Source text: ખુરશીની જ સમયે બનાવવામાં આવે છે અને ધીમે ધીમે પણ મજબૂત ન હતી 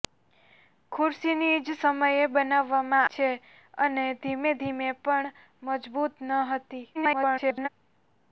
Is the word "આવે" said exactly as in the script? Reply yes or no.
no